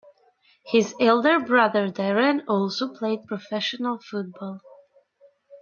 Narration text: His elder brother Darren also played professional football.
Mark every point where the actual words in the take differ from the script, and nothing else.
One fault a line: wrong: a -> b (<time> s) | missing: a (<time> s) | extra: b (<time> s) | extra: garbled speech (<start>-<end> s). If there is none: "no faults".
no faults